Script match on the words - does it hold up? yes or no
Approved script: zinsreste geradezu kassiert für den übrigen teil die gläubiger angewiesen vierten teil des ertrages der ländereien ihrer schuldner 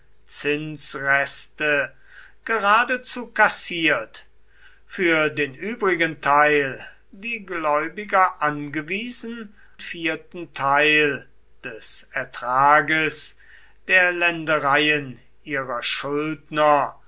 yes